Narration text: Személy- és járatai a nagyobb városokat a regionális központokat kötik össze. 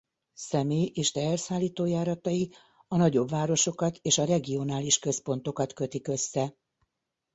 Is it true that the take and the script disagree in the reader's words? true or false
true